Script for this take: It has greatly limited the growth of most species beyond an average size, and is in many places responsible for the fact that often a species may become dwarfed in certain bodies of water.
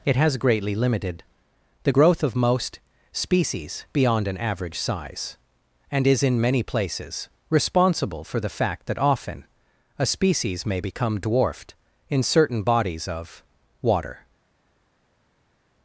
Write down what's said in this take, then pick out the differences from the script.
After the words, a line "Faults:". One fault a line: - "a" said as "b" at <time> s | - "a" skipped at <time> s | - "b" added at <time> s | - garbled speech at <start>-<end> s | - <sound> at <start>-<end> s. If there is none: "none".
It has greatly limited the growth of most species beyond an average size, and is in many places responsible for the fact that often a species may become dwarfed in certain bodies of water.
Faults:
none